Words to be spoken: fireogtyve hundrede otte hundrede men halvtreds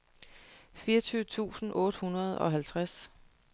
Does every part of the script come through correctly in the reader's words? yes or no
no